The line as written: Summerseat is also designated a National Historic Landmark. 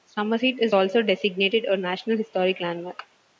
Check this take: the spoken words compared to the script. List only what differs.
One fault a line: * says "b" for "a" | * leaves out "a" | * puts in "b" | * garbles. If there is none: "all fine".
all fine